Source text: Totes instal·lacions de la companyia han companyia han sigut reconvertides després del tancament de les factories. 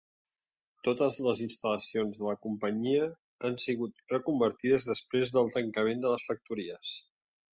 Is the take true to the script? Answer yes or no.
no